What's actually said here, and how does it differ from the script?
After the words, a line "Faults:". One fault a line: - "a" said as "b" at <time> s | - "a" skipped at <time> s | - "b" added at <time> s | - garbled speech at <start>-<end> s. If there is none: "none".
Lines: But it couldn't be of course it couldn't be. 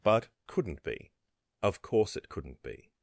But couldn't be of course it couldn't be.
Faults:
- "it" skipped at 0.3 s